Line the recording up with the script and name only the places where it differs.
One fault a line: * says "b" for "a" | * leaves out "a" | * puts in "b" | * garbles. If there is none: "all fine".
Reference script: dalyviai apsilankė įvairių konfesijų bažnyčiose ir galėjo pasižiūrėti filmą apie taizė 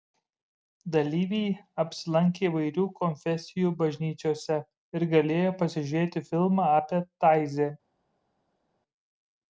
all fine